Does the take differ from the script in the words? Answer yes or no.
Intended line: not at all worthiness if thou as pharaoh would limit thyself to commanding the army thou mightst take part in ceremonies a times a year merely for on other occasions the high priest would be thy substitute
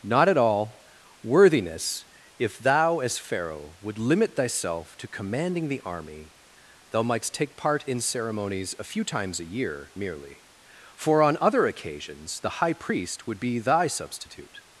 yes